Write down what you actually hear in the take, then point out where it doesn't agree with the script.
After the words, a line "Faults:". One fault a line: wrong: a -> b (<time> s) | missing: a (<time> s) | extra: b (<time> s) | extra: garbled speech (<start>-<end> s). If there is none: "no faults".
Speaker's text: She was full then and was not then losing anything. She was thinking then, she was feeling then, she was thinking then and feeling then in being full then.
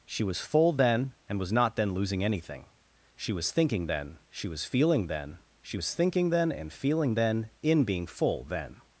She was full then and was not then losing anything. She was thinking then, she was feeling then, she was thinking then and feeling then in being full then.
Faults:
no faults